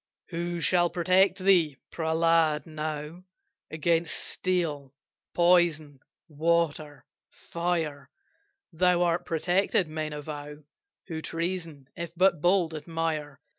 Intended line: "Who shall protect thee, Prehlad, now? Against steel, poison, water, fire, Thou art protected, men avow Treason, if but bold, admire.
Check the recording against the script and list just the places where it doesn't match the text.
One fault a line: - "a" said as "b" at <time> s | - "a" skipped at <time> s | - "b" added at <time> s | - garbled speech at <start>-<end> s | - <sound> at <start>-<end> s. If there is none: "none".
- "Who" added at 11.1 s